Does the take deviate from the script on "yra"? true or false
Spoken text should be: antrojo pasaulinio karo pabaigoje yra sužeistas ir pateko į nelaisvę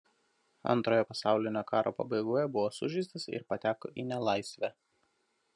true